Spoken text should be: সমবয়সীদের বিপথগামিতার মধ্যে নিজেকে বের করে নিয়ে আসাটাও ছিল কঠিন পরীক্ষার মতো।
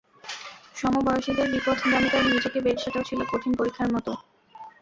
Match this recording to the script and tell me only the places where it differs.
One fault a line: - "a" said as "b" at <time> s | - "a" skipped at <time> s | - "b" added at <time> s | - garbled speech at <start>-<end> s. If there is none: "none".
- "মধ্যে" skipped at 2.2 s
- "করে নিয়ে" skipped at 2.7 s